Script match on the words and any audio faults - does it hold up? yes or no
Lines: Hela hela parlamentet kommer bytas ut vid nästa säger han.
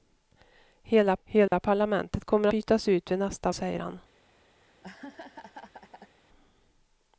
no